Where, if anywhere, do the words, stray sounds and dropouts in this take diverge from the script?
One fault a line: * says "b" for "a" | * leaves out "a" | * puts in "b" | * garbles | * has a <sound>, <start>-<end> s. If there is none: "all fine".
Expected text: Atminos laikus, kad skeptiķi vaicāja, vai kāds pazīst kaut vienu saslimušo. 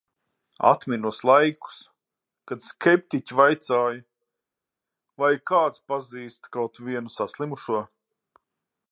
all fine